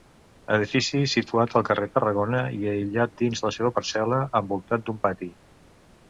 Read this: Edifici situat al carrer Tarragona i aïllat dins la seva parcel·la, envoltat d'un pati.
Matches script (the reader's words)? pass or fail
pass